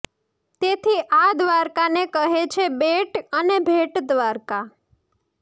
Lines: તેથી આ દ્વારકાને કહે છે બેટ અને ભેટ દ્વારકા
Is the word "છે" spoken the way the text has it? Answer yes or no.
yes